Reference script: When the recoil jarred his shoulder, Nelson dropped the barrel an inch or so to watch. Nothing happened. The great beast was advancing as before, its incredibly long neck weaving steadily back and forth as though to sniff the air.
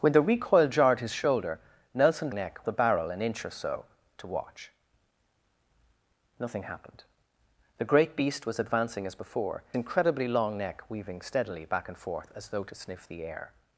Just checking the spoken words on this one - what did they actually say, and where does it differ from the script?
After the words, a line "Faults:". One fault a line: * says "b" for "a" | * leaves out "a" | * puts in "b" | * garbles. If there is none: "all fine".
When the recoil jarred his shoulder, Nelson neck the barrel an inch or so to watch. Nothing happened. The great beast was advancing as before, incredibly long neck weaving steadily back and forth as though to sniff the air.
Faults:
* says "neck" for "dropped"
* leaves out "its"